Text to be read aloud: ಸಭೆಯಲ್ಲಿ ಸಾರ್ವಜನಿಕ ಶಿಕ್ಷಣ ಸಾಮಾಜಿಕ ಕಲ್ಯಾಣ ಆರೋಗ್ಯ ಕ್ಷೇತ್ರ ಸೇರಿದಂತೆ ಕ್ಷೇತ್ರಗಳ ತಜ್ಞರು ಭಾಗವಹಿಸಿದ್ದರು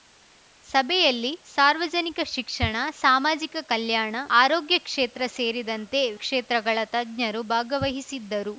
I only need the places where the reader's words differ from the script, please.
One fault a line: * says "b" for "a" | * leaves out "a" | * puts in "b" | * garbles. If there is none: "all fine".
all fine